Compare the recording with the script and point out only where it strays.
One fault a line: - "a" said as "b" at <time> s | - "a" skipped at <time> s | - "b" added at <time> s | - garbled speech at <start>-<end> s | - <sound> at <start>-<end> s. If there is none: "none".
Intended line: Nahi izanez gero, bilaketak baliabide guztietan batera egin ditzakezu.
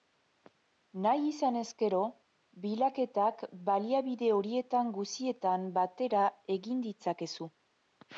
- "horietan" added at 4.4 s